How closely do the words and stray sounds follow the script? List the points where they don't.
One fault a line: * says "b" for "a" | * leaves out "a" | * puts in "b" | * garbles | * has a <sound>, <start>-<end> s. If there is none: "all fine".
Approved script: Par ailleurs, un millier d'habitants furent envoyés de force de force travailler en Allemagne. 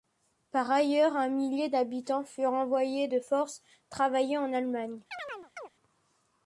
* leaves out "de force"
* has a chirp, 5.1-5.7 s